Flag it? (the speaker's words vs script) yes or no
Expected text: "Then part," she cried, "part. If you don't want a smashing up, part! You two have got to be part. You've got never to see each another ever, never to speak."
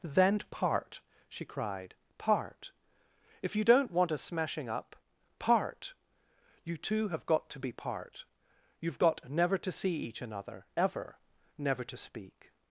no